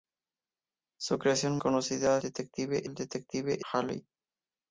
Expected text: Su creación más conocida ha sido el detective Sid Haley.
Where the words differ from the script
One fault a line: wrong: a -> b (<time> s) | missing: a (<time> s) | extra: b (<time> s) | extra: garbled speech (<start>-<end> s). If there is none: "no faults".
missing: más (1.6 s)
wrong: sido -> detective (2.2 s)
missing: Sid (3.6 s)